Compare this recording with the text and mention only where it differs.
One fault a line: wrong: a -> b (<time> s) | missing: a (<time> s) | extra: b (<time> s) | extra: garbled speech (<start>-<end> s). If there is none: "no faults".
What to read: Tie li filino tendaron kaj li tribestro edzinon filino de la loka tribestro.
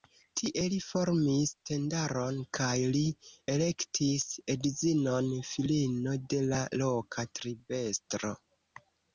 wrong: filino -> formis (0.8 s)
wrong: tribestro -> elektis (3.5 s)